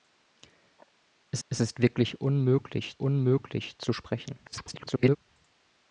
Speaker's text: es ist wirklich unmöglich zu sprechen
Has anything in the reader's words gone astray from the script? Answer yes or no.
yes